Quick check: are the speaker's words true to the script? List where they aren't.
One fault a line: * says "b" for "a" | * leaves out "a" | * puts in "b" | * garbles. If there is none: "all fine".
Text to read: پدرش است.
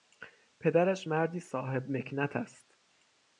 * puts in "مردی صاحب مکنت"